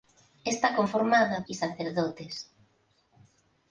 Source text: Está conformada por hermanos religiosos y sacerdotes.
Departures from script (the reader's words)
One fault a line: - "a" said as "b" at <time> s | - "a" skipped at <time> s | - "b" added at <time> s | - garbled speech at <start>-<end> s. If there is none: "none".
- "por hermanos religiosos" skipped at 1.4 s